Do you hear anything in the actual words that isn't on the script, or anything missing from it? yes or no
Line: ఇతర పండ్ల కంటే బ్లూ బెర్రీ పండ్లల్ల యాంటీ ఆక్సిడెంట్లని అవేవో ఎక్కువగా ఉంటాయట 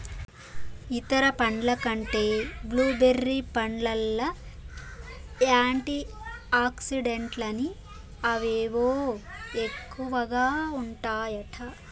no